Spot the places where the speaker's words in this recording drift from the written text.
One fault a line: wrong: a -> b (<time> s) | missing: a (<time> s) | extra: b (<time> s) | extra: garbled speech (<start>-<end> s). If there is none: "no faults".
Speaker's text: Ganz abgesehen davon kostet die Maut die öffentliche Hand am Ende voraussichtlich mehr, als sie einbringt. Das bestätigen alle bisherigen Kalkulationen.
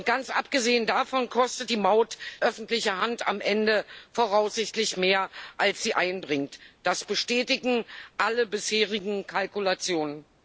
missing: die (2.2 s)